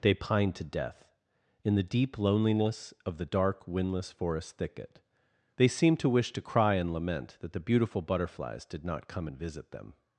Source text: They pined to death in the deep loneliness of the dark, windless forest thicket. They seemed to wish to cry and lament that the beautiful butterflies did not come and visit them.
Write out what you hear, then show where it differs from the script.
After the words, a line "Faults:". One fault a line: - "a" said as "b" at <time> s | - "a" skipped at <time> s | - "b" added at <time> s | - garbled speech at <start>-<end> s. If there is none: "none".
They pined to death in the deep loneliness of the dark, windless forest thicket. They seemed to wish to cry and lament that the beautiful butterflies did not come and visit them.
Faults:
none